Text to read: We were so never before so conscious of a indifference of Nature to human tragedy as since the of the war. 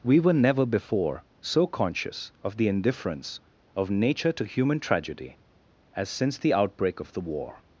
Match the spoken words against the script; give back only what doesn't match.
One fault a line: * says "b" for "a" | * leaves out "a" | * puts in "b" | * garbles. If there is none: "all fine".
* leaves out "so"
* says "the" for "a"
* puts in "outbreak"